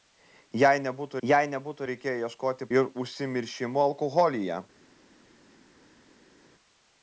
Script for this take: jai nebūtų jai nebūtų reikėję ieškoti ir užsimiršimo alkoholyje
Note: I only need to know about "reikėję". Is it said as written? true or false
true